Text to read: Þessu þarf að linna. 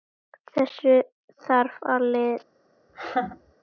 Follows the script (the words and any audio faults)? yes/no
no